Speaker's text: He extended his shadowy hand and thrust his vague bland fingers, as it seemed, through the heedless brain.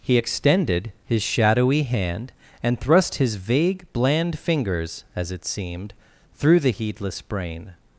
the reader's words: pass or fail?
pass